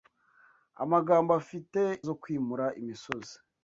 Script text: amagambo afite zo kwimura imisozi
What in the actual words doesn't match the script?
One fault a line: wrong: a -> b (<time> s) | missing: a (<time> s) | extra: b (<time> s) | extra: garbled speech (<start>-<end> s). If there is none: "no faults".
no faults